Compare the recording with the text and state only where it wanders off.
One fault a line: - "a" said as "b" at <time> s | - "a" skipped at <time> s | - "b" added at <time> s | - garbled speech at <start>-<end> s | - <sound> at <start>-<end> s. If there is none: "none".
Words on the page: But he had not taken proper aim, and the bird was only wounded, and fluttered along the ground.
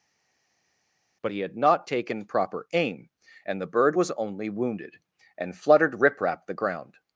- "along" said as "riprap" at 6.0 s